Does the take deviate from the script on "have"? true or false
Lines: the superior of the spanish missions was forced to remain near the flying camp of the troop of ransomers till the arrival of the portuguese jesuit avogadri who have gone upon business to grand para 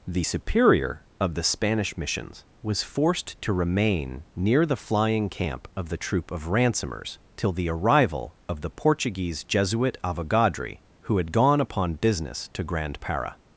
true